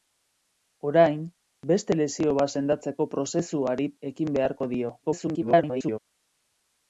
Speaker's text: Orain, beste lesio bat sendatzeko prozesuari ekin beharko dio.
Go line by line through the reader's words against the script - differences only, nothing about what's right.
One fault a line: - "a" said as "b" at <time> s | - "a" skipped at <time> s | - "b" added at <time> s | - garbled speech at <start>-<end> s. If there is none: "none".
- garbled speech at 5.0-6.0 s